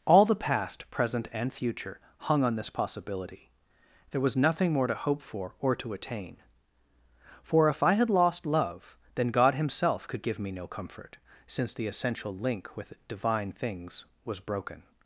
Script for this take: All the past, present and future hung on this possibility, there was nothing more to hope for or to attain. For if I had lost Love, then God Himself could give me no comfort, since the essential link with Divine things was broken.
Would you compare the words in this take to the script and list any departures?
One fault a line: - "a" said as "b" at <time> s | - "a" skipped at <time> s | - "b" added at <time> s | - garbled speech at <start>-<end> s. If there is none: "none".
none